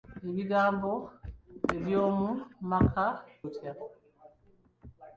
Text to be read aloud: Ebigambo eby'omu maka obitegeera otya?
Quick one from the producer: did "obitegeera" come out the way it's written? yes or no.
no